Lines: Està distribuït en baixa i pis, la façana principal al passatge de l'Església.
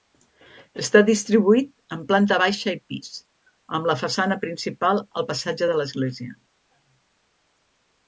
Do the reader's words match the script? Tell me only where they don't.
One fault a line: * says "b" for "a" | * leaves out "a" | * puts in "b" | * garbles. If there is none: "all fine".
* puts in "planta"
* puts in "amb"